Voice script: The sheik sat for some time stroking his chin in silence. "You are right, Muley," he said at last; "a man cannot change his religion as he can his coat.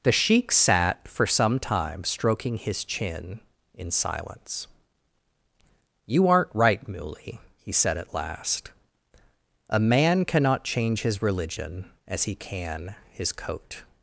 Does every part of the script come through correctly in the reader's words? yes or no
no